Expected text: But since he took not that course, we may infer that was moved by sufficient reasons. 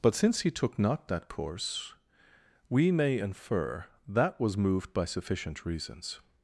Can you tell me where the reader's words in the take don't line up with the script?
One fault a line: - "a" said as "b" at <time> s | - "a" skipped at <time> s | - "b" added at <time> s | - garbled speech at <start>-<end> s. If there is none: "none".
none